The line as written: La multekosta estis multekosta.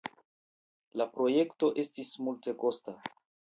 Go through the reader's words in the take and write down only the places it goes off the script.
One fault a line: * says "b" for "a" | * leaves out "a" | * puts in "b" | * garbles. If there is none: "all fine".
* says "projekto" for "multekosta"